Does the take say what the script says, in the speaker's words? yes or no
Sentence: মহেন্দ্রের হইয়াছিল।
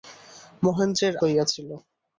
yes